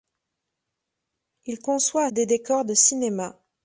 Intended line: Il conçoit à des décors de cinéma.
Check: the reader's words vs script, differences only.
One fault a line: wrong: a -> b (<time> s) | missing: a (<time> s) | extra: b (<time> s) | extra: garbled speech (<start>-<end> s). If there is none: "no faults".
no faults